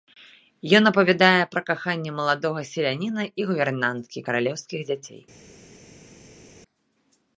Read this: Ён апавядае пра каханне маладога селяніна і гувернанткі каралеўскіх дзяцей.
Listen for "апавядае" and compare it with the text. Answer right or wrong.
right